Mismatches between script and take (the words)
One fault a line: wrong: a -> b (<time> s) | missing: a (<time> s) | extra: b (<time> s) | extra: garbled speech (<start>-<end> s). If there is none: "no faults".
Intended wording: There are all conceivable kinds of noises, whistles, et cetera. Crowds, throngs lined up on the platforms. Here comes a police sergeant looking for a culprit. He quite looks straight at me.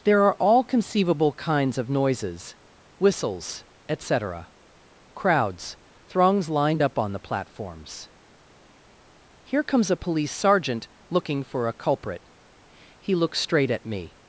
missing: quite (13.1 s)